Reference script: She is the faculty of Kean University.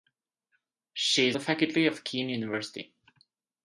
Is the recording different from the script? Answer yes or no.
no